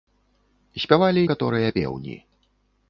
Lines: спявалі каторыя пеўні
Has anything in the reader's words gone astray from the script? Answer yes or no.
no